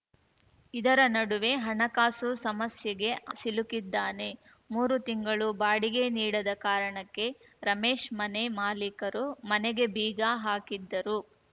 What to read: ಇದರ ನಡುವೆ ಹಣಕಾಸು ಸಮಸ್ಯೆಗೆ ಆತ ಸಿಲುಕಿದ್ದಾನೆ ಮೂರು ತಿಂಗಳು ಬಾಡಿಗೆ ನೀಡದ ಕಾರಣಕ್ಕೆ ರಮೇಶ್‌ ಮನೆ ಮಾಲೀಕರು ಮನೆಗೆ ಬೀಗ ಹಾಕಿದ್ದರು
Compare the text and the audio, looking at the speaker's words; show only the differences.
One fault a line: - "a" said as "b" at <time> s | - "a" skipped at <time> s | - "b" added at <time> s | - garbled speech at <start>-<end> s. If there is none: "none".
- "ಆತ" skipped at 3.1 s